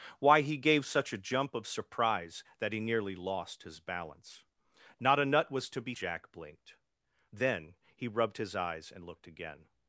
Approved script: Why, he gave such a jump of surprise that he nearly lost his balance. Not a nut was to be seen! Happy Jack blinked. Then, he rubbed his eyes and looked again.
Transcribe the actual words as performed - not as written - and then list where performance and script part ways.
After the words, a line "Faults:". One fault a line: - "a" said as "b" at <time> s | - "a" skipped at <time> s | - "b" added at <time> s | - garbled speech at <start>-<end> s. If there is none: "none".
Why, he gave such a jump of surprise that he nearly lost his balance. Not a nut was to be Jack blinked. Then, he rubbed his eyes and looked again.
Faults:
- "seen Happy" skipped at 5.9 s